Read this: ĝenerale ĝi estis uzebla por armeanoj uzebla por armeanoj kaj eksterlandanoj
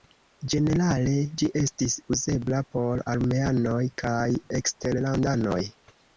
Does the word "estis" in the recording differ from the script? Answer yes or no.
no